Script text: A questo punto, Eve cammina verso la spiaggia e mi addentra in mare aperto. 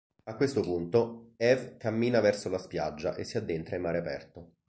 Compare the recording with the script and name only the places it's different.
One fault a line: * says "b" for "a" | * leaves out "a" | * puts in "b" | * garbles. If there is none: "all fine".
* says "si" for "mi"